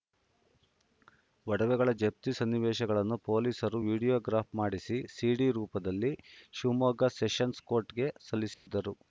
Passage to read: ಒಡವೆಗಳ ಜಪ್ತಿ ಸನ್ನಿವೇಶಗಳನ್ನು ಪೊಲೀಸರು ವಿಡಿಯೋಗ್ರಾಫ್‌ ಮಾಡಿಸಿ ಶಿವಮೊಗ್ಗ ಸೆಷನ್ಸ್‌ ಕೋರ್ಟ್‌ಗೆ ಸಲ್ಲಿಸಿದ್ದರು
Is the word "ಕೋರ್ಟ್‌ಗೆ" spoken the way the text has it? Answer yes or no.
yes